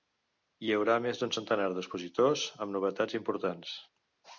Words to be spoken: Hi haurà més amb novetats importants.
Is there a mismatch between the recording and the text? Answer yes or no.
yes